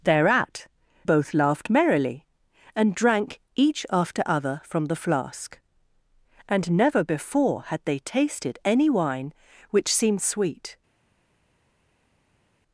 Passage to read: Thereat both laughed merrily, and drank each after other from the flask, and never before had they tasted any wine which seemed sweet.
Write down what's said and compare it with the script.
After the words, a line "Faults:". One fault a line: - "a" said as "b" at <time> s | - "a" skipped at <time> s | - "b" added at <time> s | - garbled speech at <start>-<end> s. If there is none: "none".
Thereat both laughed merrily, and drank each after other from the flask, and never before had they tasted any wine which seemed sweet.
Faults:
none